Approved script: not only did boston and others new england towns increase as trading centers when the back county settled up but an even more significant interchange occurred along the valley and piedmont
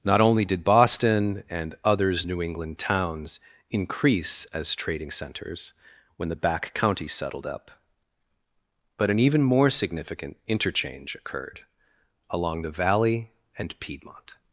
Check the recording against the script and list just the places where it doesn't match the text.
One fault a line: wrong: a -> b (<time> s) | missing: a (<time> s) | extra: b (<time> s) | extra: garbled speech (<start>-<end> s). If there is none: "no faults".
no faults